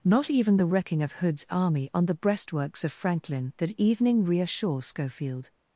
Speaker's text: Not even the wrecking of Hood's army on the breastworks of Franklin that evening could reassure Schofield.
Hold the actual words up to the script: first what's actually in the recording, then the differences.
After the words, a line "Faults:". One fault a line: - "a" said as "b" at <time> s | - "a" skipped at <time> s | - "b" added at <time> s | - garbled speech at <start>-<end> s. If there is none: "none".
Not even the wrecking of Hood's army on the breastworks of Franklin that evening reassure Schofield.
Faults:
- "could" skipped at 4.2 s